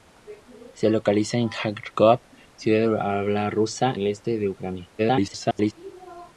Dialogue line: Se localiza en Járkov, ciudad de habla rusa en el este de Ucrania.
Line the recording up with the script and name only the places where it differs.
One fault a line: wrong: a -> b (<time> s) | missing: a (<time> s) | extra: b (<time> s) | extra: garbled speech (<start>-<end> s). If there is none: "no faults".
missing: en (3.9 s)
extra: garbled speech (5.0-5.7 s)